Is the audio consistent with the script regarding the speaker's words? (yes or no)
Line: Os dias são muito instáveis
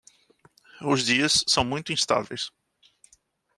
yes